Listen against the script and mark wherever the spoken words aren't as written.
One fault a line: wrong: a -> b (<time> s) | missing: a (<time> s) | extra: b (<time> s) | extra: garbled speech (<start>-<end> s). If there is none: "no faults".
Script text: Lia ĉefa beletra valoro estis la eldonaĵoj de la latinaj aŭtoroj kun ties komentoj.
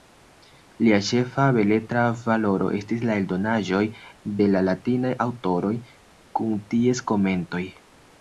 no faults